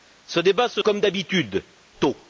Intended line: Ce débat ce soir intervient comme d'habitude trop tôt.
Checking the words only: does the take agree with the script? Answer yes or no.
no